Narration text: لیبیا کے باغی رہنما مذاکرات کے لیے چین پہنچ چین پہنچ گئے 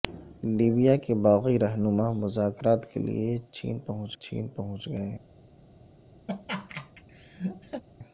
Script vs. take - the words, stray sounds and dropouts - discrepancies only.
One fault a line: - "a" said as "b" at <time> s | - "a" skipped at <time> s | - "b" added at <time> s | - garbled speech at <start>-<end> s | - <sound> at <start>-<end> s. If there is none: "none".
- laugh at 6.3-7.8 s